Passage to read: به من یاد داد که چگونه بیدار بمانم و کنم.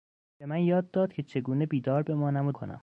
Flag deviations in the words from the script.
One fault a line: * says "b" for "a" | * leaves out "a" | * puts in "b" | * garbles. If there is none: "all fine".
all fine